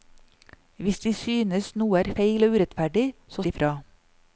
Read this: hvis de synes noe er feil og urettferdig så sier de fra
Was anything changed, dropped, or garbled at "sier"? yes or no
yes